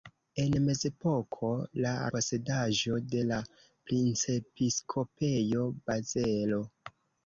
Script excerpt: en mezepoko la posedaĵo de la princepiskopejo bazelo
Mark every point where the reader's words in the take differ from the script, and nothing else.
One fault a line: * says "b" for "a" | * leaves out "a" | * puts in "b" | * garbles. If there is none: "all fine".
all fine